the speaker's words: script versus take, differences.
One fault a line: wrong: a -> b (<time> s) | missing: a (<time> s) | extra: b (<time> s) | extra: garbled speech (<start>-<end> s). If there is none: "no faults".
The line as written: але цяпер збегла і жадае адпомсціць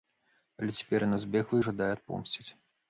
extra: яна (1.1 s)